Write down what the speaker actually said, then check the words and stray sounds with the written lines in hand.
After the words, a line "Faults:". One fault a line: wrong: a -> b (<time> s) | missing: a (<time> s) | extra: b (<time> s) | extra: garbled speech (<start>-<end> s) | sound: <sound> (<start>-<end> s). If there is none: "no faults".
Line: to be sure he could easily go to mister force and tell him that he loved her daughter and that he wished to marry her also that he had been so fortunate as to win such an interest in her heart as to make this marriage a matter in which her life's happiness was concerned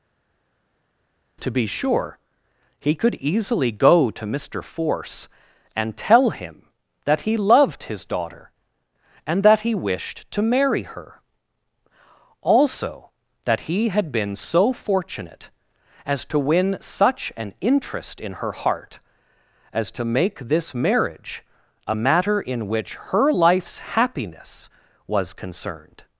to be sure he could easily go to mister force and tell him that he loved his daughter and that he wished to marry her also that he had been so fortunate as to win such an interest in her heart as to make this marriage a matter in which her life's happiness was concerned
Faults:
wrong: her -> his (7.8 s)